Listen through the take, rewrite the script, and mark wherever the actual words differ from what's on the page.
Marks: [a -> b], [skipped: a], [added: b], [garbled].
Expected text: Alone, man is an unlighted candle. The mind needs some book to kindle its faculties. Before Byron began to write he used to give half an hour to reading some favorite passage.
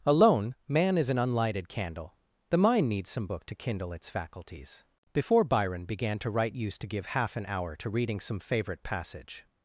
Alone, man is an unlighted candle. The mind needs some book to kindle its faculties. Before Byron began to write [skipped: he] used to give half an hour to reading some favorite passage.